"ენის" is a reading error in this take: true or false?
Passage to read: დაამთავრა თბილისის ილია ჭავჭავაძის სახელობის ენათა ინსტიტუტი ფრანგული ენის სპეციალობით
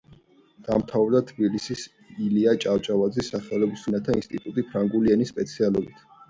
false